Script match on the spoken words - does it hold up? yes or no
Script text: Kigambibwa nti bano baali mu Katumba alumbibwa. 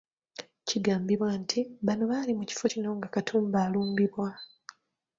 no